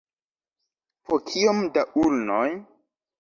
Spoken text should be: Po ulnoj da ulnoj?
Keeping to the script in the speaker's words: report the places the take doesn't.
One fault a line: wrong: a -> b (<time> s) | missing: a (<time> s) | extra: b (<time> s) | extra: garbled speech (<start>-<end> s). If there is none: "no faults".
wrong: ulnoj -> kiom (1.3 s)